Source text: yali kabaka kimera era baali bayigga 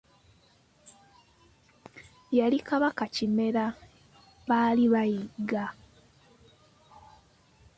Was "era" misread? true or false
true